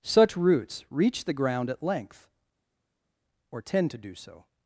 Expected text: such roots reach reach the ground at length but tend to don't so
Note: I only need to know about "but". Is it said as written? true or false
false